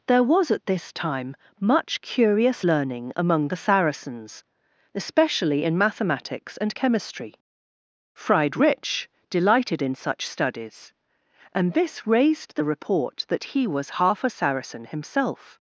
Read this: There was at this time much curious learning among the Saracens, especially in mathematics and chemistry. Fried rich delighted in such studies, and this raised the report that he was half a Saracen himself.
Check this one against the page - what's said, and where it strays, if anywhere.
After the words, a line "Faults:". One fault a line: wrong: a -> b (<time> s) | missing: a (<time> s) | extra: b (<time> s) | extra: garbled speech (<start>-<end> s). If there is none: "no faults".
There was at this time much curious learning among the Saracens, especially in mathematics and chemistry. Fried rich delighted in such studies, and this raised the report that he was half a Saracen himself.
Faults:
no faults